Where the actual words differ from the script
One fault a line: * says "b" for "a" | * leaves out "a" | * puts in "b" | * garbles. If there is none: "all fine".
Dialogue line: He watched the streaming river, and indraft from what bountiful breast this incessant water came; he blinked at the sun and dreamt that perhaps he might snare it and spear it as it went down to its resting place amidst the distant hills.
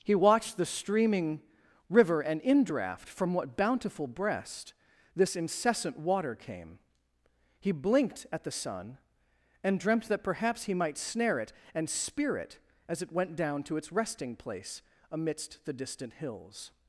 all fine